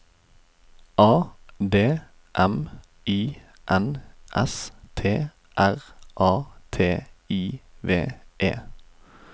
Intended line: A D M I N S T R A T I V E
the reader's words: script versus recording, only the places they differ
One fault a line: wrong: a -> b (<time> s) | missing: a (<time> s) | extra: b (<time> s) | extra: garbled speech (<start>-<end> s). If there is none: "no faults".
no faults